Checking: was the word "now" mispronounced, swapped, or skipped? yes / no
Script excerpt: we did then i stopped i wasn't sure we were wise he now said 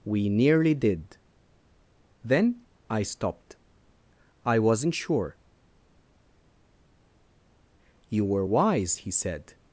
yes